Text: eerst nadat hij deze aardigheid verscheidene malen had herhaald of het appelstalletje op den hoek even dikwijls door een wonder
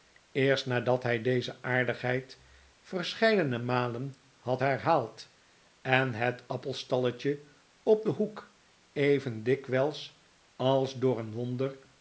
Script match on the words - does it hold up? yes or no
no